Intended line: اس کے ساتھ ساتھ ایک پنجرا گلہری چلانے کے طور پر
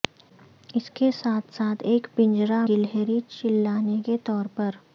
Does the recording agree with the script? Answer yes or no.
yes